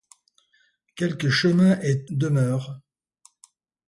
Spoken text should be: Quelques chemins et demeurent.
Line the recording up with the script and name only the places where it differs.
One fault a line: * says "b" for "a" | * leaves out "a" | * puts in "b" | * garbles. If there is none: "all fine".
all fine